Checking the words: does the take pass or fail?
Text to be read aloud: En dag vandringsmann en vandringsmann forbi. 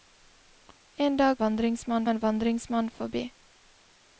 pass